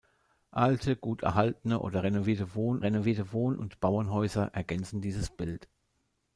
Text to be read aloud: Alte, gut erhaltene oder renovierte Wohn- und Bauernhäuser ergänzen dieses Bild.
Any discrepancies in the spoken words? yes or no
yes